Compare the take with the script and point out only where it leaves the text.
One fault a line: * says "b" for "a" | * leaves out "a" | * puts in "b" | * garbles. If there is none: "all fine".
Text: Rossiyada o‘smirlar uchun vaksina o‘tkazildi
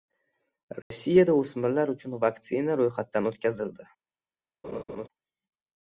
* puts in "ro‘yxatdan"